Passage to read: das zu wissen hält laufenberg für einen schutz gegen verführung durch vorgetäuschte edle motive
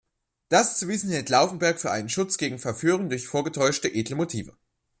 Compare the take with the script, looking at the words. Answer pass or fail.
pass